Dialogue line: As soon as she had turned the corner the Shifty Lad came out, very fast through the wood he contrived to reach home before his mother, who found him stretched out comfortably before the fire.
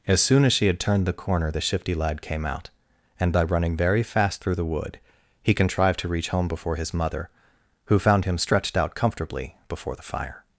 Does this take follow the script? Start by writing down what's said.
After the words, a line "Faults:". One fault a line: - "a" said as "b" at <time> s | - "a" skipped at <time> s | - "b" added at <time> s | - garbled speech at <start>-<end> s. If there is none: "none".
As soon as she had turned the corner the Shifty Lad came out, and by running very fast through the wood he contrived to reach home before his mother, who found him stretched out comfortably before the fire.
Faults:
- "and by running" added at 3.2 s